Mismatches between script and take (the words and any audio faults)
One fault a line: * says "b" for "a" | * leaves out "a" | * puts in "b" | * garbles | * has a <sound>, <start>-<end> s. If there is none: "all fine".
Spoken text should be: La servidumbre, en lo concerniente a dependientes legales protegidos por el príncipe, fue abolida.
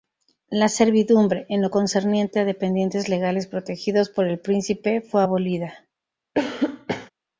* has a cough, 6.3-7.1 s